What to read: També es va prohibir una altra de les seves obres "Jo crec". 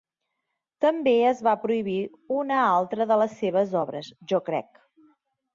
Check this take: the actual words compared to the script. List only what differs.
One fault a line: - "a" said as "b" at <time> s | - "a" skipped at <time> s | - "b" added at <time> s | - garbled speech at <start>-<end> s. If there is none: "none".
none